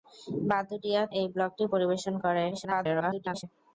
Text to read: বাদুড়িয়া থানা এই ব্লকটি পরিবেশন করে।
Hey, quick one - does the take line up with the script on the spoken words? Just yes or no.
no